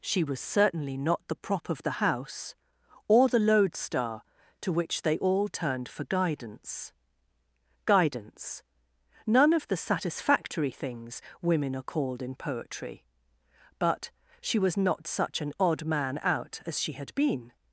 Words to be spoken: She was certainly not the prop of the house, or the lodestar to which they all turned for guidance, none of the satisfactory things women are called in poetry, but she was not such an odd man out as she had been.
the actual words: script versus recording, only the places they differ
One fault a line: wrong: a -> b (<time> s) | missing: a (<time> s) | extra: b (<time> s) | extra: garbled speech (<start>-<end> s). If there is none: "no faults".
extra: guidance (7.8 s)